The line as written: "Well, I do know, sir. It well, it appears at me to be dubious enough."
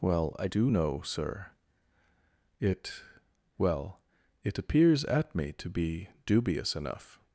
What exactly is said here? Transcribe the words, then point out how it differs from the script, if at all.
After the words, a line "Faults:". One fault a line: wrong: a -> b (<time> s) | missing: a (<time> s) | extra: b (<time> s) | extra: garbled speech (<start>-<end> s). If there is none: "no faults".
"Well, I do know, sir. It well, it appears at me to be dubious enough."
Faults:
no faults